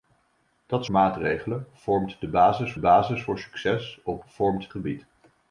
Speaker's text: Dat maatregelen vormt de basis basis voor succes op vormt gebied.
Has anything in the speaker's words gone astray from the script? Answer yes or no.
no